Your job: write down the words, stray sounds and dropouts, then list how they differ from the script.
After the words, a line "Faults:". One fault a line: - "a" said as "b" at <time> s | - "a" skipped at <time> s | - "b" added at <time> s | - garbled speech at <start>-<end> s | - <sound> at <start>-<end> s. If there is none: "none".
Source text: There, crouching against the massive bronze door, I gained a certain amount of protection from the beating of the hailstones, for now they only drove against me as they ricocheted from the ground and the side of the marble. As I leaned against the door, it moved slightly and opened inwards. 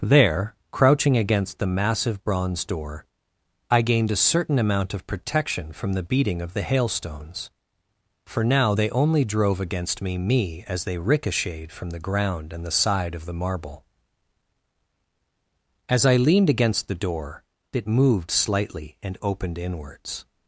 There, crouching against the massive bronze door, I gained a certain amount of protection from the beating of the hailstones, for now they only drove against me me as they ricocheted from the ground and the side of the marble. As I leaned against the door, it moved slightly and opened inwards.
Faults:
- "me" added at 10.2 s